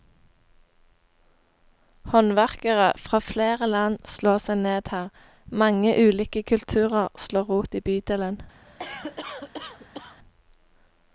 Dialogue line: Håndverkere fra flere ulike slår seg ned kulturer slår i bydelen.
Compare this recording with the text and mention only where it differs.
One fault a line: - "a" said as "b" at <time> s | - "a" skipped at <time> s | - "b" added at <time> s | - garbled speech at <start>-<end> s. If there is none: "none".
- "ulike" said as "land" at 3.7 s
- "her mange ulike" added at 5.0 s
- "rot" added at 7.5 s